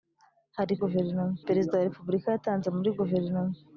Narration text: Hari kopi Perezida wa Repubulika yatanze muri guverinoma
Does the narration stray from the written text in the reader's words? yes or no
yes